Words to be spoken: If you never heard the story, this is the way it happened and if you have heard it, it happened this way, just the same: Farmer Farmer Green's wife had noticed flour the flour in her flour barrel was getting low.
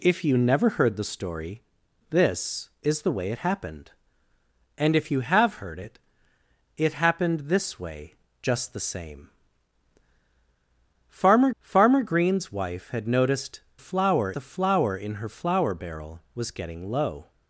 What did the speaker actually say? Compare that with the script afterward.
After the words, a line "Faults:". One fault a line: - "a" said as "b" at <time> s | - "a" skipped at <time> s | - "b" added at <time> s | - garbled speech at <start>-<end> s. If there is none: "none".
If you never heard the story, this is the way it happened and if you have heard it, it happened this way, just the same: Farmer Farmer Green's wife had noticed flour the flour in her flour barrel was getting low.
Faults:
none